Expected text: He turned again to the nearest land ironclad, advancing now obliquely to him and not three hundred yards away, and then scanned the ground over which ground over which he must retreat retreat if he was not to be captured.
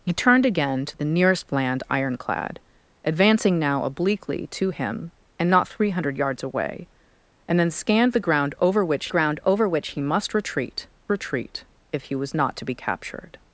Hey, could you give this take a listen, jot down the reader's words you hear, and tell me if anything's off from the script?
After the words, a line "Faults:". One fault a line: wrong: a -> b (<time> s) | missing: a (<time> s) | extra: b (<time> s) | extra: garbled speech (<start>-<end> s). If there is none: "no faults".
He turned again to the nearest land ironclad, advancing now obliquely to him and not three hundred yards away, and then scanned the ground over which ground over which he must retreat retreat if he was not to be captured.
Faults:
no faults